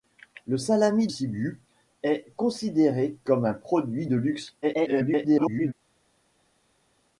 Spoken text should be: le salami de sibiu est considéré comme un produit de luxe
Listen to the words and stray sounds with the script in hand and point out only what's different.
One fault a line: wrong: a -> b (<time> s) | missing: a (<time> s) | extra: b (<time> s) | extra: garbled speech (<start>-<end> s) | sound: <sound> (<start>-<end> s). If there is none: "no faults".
missing: de (1.1 s)
extra: garbled speech (4.6-5.7 s)